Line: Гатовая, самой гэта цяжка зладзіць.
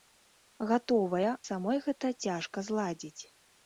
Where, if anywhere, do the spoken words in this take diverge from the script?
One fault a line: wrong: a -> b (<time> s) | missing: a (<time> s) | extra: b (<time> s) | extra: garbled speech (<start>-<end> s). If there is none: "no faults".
no faults